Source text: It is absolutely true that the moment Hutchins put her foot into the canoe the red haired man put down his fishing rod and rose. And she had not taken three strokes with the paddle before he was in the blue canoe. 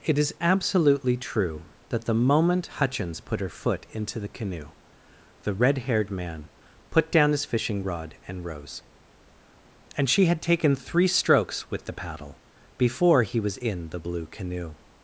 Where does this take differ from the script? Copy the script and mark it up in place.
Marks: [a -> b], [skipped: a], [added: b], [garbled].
It is absolutely true that the moment Hutchins put her foot into the canoe the red haired man put down his fishing rod and rose. And she had [skipped: not] taken three strokes with the paddle before he was in the blue canoe.